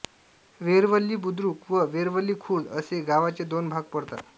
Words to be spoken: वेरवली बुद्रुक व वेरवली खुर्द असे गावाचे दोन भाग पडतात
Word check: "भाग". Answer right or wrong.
right